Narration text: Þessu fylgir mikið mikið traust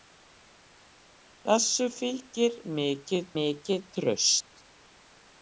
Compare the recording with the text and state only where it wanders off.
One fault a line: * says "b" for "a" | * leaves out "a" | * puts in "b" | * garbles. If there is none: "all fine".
all fine